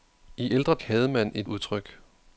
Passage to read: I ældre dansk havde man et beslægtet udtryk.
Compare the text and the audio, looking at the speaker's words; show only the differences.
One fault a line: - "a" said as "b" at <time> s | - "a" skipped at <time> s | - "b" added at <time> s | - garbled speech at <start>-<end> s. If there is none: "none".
- "dansk" skipped at 0.7 s
- "beslægtet" skipped at 1.5 s